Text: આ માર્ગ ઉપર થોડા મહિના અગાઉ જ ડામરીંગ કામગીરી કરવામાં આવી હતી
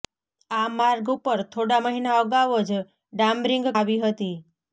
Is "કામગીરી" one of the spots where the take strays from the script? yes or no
yes